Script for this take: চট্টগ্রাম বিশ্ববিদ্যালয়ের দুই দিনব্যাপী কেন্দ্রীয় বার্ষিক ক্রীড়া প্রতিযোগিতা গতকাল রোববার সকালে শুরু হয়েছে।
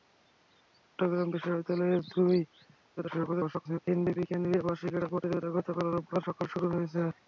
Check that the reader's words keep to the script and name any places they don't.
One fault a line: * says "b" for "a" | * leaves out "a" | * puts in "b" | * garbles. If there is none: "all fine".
* garbles